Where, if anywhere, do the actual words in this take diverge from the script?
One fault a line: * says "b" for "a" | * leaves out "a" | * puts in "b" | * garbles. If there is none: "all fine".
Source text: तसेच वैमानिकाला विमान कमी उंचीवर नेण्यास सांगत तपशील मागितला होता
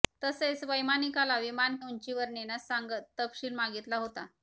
* leaves out "कमी"